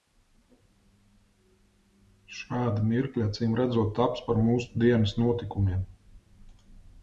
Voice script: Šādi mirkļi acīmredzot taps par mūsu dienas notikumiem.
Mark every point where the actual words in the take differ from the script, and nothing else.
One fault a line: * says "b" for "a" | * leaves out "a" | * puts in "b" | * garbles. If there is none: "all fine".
all fine